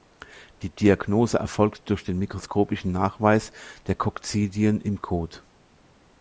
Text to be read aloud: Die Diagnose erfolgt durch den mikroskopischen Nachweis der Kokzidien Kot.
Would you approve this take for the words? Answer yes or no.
no